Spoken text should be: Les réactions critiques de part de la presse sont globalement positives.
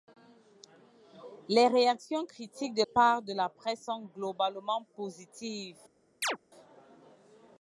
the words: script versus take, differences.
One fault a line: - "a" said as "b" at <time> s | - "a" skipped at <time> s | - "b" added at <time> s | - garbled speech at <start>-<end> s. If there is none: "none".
none